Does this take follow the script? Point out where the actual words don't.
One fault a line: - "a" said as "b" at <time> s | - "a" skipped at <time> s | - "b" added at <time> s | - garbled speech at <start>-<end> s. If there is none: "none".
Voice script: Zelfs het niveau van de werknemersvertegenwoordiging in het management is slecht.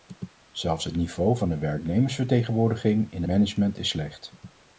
- "het" skipped at 3.2 s